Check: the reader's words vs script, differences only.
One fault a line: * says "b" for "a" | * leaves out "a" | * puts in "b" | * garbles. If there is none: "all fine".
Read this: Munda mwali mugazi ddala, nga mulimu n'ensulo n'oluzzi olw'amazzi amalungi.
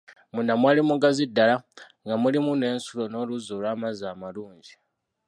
all fine